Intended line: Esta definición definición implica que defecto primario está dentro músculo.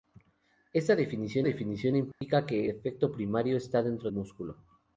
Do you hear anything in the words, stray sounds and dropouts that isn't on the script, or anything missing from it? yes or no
yes